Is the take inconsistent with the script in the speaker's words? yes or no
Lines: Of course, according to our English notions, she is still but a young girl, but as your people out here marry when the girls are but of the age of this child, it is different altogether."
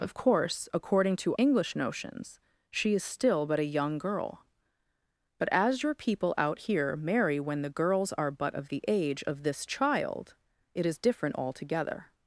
yes